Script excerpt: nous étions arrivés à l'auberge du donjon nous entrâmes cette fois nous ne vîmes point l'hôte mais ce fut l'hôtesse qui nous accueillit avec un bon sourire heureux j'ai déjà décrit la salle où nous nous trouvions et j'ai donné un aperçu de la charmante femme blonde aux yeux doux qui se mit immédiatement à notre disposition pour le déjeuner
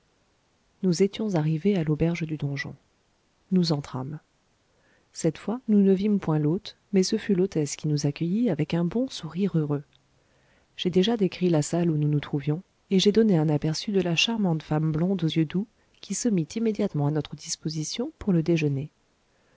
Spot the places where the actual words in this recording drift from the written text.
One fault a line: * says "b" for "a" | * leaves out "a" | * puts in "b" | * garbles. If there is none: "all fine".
all fine